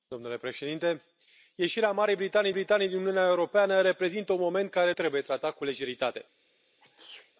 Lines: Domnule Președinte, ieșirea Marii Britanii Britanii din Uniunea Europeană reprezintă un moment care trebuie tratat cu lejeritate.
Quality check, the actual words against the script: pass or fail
pass